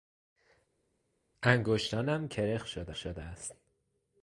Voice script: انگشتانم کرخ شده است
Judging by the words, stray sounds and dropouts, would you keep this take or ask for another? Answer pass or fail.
fail